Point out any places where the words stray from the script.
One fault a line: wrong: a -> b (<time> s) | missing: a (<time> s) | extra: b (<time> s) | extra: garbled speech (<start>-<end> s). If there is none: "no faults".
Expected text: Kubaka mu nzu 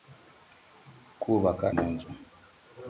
no faults